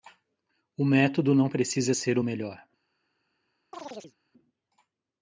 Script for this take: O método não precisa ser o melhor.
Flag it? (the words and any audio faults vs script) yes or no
yes